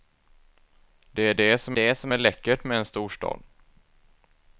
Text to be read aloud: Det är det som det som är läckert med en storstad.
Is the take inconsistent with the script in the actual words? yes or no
no